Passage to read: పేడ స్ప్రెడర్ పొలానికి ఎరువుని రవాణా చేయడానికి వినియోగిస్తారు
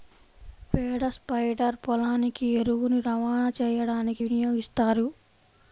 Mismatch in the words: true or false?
false